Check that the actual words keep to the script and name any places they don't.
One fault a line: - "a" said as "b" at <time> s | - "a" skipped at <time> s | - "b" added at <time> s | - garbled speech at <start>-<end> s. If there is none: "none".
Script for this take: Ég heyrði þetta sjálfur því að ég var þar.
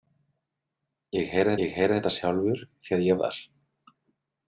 - "ég heyrði" added at 1.6 s
- "var" skipped at 3.2 s